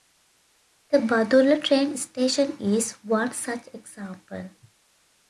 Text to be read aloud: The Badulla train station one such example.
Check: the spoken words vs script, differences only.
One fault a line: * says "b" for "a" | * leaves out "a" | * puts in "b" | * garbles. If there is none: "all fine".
* puts in "is"